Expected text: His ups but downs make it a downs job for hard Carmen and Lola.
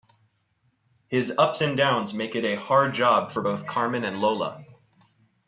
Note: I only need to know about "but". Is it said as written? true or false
false